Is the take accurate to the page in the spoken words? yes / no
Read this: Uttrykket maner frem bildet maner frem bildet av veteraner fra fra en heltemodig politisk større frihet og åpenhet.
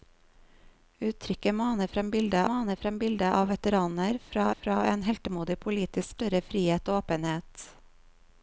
yes